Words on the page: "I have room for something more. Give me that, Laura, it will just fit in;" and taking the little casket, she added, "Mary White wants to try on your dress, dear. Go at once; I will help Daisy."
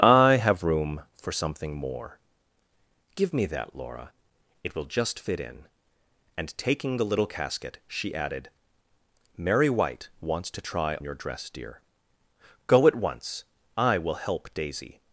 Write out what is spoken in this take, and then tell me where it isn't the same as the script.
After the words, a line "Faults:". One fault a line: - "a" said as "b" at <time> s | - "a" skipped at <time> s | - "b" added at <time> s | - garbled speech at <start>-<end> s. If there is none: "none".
"I have room for something more. Give me that, Laura, it will just fit in;" and taking the little casket, she added, "Mary White wants to try your dress, dear. Go at once; I will help Daisy."
Faults:
- "on" skipped at 11.0 s